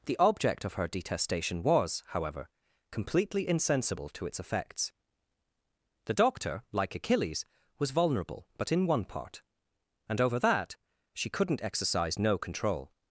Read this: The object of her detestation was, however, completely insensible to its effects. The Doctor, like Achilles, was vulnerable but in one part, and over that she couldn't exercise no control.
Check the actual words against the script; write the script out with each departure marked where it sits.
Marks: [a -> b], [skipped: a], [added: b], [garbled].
The object of her detestation was, however, completely insensible to its effects. The Doctor, like Achilles, was vulnerable but in one part, and over that she couldn't exercise no control.